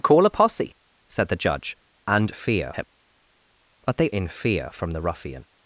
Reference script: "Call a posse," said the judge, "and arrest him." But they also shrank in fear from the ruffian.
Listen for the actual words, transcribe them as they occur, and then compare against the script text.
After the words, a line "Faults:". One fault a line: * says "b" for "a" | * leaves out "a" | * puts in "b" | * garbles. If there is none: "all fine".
"Call a posse," said the judge, "and fear him." But they in fear from the ruffian.
Faults:
* says "fear" for "arrest"
* leaves out "also shrank"